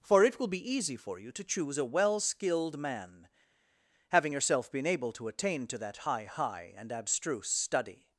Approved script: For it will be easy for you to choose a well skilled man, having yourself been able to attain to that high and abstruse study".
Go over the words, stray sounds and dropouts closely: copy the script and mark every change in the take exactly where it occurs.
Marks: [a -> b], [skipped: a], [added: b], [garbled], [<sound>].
For it will be easy for you to choose a well skilled man, having yourself been able to attain to that high [added: high] and abstruse study".